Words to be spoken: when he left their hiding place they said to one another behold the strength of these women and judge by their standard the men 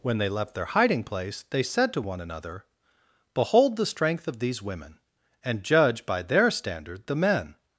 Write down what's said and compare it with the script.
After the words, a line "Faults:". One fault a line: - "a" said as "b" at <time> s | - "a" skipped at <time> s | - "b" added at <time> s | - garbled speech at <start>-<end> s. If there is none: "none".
when they left their hiding place they said to one another behold the strength of these women and judge by their standard the men
Faults:
- "he" said as "they" at 0.2 s